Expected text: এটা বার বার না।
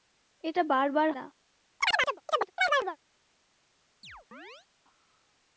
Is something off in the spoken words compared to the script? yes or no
no